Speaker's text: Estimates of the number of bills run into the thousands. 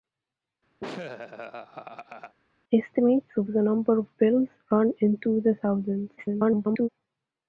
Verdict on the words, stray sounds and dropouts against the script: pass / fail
fail